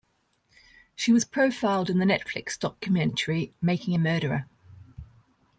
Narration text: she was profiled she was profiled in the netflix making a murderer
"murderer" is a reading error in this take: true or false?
false